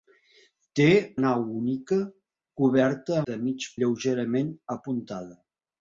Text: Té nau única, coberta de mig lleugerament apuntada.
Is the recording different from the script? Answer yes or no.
no